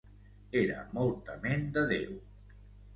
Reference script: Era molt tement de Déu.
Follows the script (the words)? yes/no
yes